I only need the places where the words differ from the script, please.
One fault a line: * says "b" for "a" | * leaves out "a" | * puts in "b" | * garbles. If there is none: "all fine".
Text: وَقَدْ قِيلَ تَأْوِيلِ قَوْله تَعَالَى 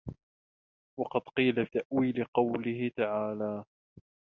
all fine